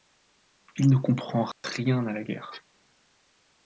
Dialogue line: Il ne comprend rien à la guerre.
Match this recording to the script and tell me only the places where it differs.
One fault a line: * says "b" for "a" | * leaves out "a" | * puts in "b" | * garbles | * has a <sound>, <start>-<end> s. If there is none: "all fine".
* has a dropout, 1.5-1.6 s